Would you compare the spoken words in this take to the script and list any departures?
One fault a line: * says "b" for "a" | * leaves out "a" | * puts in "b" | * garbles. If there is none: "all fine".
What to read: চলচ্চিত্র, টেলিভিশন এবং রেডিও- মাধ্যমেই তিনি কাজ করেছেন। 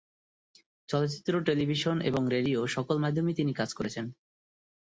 * puts in "সকল"